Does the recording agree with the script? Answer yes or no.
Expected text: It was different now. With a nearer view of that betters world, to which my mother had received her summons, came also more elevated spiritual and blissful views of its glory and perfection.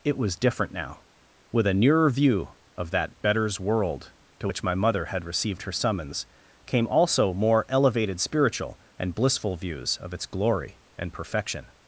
yes